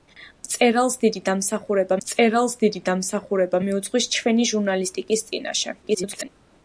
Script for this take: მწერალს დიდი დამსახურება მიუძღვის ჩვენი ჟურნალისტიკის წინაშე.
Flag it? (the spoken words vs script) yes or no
yes